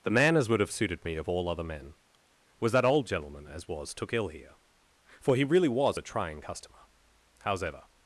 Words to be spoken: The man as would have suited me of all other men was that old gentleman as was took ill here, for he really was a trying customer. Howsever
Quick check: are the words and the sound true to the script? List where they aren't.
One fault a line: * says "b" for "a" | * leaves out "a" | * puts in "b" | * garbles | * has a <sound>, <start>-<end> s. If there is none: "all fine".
all fine